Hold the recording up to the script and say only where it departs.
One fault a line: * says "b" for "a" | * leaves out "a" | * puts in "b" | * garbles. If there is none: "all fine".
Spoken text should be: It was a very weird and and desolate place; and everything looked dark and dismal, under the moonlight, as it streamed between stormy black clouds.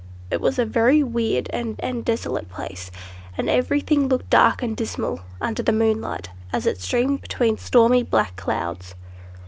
all fine